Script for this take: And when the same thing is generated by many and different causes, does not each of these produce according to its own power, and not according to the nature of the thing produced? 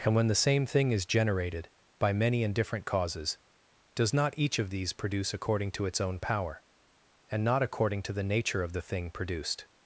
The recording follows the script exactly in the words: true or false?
true